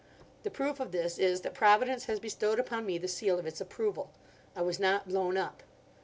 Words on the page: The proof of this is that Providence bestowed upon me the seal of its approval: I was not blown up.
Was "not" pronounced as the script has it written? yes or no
yes